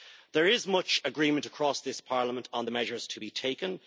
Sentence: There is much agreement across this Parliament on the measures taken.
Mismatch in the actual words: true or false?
true